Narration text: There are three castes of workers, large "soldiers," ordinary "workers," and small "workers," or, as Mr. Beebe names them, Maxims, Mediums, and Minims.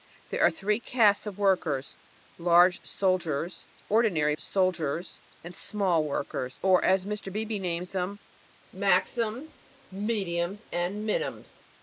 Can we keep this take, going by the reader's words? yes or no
no